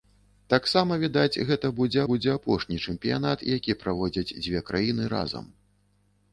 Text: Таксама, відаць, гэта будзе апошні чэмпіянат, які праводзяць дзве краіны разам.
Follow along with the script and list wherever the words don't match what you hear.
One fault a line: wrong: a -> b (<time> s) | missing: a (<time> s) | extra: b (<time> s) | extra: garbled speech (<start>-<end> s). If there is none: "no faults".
extra: будзе (2.1 s)